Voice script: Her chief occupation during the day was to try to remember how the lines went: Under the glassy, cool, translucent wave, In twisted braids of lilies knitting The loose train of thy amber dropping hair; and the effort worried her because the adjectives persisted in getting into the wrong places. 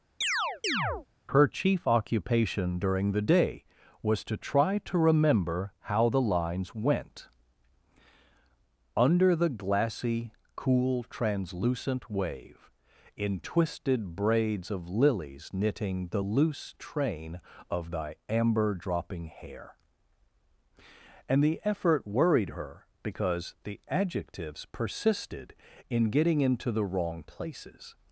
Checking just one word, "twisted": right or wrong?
right